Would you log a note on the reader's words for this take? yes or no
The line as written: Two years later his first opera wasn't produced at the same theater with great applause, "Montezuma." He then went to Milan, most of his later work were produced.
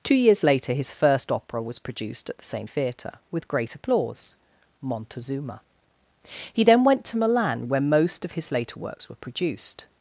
yes